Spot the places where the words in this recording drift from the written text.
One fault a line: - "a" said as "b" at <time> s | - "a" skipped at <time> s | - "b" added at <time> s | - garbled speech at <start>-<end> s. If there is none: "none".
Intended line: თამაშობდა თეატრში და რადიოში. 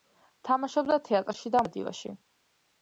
none